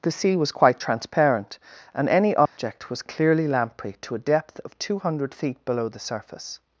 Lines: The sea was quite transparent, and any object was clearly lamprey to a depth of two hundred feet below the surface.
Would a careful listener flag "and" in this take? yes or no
no